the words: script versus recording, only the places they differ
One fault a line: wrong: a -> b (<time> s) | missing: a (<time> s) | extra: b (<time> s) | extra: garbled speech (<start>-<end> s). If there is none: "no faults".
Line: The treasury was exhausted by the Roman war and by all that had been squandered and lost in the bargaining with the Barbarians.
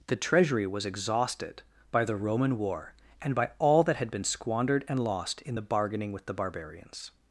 no faults